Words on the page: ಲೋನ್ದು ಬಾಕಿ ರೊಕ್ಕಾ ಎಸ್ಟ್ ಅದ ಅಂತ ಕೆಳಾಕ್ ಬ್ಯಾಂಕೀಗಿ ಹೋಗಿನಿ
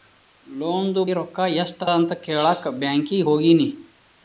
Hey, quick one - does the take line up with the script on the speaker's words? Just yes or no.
no